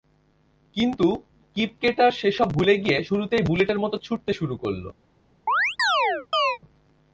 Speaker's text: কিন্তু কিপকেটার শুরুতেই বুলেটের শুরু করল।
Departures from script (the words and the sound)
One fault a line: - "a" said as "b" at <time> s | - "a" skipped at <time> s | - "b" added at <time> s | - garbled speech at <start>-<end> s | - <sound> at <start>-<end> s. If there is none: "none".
- "সেসব ভুলে গিয়ে" added at 2.1 s
- "মতো ছুটতে" added at 3.8 s
- chirp at 5.5-6.6 s